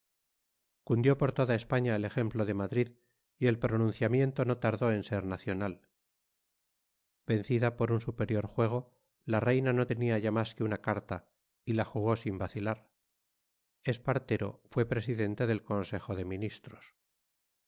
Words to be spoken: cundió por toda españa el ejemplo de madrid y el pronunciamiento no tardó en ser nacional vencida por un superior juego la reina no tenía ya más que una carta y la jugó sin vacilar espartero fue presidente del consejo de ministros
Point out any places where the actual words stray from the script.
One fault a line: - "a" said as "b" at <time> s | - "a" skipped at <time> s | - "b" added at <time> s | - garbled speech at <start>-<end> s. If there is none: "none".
none